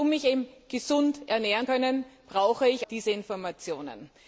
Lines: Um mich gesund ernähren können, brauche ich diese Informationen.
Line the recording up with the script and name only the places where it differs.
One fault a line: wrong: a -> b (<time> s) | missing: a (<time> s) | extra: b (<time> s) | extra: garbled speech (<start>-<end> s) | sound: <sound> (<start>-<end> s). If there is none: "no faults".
no faults